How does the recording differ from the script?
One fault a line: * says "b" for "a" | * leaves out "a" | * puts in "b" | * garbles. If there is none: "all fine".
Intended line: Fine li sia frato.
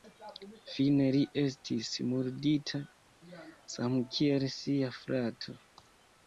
* puts in "estis murdita samkiel"